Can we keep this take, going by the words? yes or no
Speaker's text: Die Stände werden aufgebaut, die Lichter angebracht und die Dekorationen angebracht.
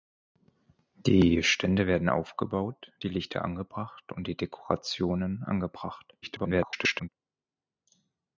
no